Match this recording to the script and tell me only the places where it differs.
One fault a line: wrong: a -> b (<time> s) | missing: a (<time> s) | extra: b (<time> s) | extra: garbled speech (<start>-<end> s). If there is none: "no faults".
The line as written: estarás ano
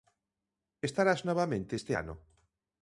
extra: novamente este (1.3 s)